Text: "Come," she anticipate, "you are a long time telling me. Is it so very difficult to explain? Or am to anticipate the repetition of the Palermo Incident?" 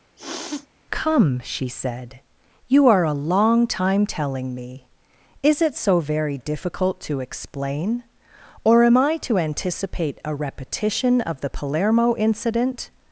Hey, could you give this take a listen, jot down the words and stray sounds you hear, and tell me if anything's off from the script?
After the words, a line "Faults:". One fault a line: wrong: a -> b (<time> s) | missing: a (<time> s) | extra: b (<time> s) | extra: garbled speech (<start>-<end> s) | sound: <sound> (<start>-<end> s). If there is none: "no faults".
"Come," she said, "you are a long time telling me. Is it so very difficult to explain? Or am I to anticipate a repetition of the Palermo Incident?"
Faults:
sound: sniff (0.2-0.7 s)
wrong: anticipate -> said (1.7 s)
extra: I (9.0 s)
wrong: the -> a (10.2 s)